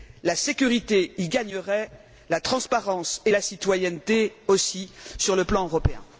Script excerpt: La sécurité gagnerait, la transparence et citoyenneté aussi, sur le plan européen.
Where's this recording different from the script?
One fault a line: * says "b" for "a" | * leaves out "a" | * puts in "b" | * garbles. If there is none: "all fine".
* puts in "y"
* puts in "la"